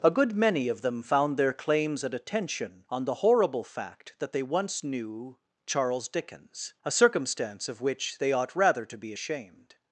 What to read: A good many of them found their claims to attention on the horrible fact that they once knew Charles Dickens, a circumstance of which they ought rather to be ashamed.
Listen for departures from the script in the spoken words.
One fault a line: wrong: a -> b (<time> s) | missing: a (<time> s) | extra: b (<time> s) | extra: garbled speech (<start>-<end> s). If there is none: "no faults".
wrong: to -> at (2.0 s)